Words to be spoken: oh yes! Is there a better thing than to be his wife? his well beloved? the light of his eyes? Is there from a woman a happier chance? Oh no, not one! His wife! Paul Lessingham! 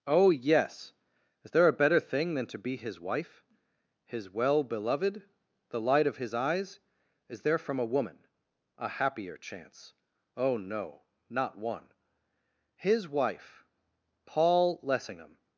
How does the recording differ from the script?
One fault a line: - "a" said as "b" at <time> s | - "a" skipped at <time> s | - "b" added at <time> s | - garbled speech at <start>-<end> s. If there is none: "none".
none